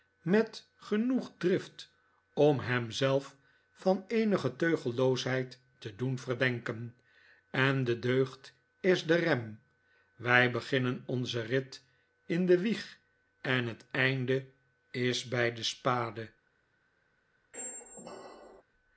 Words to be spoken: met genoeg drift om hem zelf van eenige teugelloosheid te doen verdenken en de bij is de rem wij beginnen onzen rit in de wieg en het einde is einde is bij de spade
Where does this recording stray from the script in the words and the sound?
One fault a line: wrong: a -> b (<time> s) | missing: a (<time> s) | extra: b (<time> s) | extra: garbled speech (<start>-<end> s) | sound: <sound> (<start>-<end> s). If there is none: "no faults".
wrong: bij -> deugd (8.0 s)
missing: einde is (15.3 s)
sound: squeak (17.5-18.6 s)